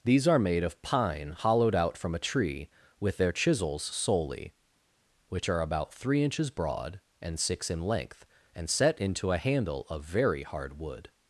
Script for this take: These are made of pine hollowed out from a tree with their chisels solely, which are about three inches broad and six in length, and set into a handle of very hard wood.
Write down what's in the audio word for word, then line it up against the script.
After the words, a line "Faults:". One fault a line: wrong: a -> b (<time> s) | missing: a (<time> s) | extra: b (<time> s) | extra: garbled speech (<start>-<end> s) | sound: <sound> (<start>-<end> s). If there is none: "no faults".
These are made of pine hollowed out from a tree with their chisels solely, which are about three inches broad and six in length, and set into a handle of very hard wood.
Faults:
no faults